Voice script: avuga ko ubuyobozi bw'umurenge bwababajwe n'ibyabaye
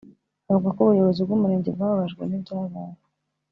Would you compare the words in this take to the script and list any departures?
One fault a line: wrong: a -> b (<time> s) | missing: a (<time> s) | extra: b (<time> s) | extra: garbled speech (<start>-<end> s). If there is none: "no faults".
no faults